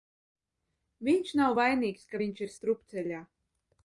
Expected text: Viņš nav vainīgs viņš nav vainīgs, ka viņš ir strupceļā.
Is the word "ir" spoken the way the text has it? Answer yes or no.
yes